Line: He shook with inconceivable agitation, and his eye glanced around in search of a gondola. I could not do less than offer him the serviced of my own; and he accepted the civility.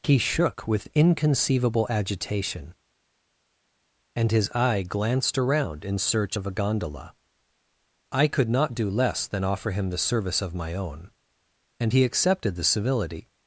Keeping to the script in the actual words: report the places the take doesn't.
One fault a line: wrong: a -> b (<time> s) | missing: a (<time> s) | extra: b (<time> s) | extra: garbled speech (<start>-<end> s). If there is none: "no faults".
wrong: serviced -> service (10.0 s)